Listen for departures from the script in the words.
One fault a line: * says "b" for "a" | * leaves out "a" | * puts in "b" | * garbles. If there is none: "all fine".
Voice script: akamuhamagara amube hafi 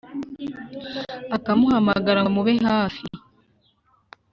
all fine